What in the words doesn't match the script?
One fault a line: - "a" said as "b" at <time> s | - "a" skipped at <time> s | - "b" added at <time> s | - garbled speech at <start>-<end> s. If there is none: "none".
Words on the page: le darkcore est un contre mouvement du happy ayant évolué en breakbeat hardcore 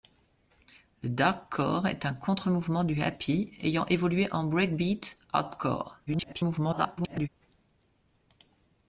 - garbled speech at 6.1-7.3 s